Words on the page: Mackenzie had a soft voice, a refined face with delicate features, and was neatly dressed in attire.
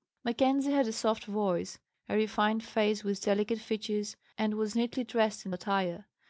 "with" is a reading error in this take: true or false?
false